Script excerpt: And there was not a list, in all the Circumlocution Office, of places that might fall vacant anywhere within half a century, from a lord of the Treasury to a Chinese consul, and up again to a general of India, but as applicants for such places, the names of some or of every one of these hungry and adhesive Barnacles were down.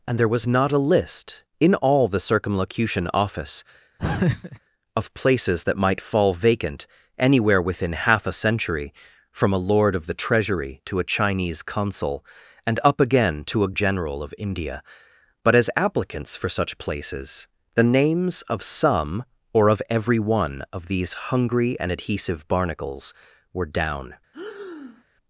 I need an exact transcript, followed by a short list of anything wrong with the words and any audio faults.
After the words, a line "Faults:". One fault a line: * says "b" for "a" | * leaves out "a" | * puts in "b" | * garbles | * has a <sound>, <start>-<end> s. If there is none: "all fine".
And there was not a list, in all the Circumlocution Office, of places that might fall vacant anywhere within half a century, from a lord of the Treasury to a Chinese consul, and up again to a general of India, but as applicants for such places, the names of some or of every one of these hungry and adhesive Barnacles were down.
Faults:
* has a laugh, 4.0-4.6 s
* has a breath, 24.3-25.0 s